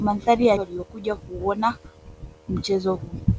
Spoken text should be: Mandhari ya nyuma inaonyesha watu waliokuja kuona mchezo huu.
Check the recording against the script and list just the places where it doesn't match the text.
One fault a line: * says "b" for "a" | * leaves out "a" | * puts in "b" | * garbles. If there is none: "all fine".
* leaves out "nyuma inaonyesha watu"